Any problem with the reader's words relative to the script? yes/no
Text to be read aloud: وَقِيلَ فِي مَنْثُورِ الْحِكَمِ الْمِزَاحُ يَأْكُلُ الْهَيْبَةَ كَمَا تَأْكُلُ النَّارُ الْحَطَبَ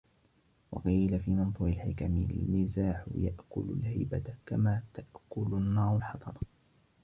no